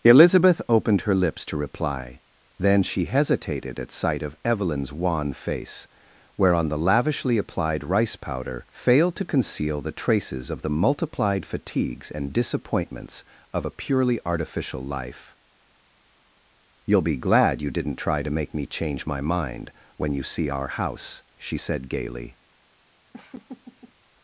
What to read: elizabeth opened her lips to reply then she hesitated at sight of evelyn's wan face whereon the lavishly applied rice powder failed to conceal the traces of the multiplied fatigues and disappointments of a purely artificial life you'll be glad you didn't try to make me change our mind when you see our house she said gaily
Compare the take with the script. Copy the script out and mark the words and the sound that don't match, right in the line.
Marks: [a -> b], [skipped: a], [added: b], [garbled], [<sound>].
elizabeth opened her lips to reply then she hesitated at sight of evelyn's wan face whereon the lavishly applied rice powder failed to conceal the traces of the multiplied fatigues and disappointments of a purely artificial life you'll be glad you didn't try to make me change [our -> my] mind when you see our house she said gaily [laugh]